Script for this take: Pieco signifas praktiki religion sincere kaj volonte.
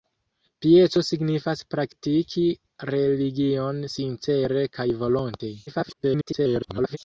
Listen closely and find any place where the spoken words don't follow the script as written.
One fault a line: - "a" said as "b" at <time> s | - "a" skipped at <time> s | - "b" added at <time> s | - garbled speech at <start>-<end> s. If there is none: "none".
- garbled speech at 5.7-7.0 s